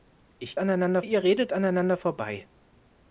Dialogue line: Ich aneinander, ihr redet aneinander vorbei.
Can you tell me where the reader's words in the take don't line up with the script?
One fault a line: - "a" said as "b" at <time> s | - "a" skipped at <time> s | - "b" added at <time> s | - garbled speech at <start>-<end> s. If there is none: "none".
none